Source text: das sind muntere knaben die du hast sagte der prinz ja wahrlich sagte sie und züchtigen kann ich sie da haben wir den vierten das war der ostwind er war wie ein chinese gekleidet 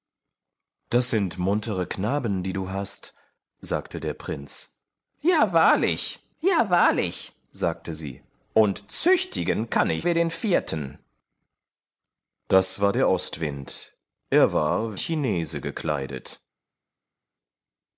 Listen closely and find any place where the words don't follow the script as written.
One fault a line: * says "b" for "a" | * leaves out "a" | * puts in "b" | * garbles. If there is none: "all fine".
* puts in "ja wahrlich"
* leaves out "sie da haben"
* leaves out "wie ein"